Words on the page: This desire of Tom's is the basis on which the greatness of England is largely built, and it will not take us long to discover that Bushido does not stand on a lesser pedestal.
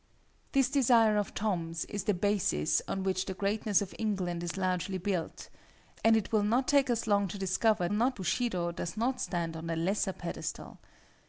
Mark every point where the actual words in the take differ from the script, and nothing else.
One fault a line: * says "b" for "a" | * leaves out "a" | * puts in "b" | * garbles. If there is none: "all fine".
* says "not" for "that"